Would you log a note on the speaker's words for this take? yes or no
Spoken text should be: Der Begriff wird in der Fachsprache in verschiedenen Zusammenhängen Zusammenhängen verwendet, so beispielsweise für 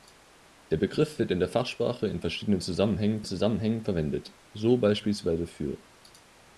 no